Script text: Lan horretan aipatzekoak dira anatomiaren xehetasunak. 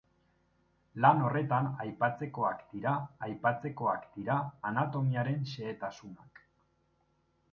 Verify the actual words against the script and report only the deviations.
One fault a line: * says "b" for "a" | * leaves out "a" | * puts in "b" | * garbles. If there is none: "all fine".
* puts in "aipatzekoak dira"